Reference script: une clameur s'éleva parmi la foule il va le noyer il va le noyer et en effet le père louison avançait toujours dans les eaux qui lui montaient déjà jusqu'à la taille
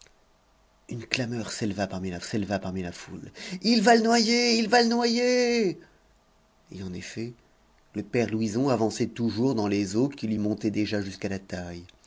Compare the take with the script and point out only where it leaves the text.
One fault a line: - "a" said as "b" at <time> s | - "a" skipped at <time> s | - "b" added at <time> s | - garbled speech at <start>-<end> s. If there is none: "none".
- "s'éleva parmi la" added at 2.2 s